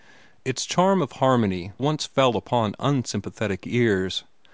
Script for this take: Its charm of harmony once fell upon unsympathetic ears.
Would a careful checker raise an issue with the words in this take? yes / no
no